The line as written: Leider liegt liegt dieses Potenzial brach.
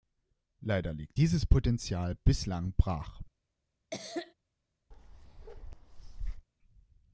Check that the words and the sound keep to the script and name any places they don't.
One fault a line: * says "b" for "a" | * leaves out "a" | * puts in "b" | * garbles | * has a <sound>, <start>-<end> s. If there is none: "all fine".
* leaves out "liegt"
* puts in "bislang"
* has a cough, 3.9-4.3 s
* has a bark, 4.9-6.5 s